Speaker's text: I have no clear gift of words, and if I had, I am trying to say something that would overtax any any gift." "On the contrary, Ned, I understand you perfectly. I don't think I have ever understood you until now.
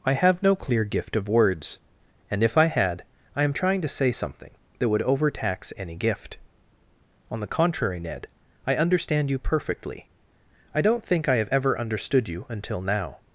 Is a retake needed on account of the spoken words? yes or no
yes